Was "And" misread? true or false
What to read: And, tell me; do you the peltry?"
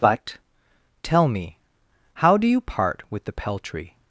true